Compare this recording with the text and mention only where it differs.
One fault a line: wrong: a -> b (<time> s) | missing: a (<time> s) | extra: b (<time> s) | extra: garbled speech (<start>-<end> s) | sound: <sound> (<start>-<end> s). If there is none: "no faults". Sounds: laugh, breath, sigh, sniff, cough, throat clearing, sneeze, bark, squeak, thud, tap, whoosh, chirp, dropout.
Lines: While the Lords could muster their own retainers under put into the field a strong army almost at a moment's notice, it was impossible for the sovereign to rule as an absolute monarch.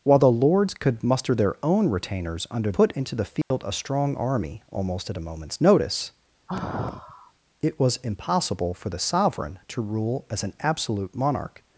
sound: dropout (3.4-3.5 s)
sound: sigh (6.5-7.3 s)